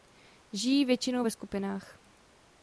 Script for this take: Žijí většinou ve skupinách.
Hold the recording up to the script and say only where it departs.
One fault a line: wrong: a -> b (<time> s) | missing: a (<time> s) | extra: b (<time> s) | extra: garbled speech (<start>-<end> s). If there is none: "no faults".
no faults